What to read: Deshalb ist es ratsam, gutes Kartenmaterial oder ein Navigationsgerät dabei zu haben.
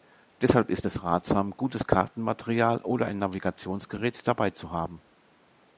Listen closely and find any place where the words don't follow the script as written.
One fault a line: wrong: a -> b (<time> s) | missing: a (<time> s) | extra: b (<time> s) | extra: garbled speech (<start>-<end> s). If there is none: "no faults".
no faults